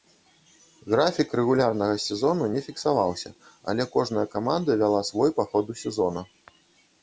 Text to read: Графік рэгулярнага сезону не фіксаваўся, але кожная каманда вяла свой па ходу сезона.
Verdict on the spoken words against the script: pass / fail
pass